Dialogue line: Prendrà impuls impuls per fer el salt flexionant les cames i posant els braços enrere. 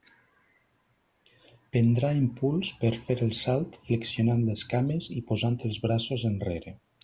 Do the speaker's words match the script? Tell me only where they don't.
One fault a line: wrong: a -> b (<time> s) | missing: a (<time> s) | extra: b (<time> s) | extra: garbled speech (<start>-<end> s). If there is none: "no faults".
missing: impuls (2.7 s)